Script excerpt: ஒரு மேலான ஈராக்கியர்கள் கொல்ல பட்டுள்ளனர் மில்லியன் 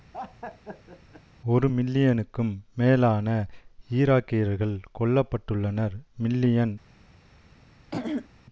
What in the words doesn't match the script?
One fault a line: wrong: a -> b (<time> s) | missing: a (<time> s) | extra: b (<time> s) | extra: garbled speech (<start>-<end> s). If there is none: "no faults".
extra: மில்லியனுக்கும் (1.7 s)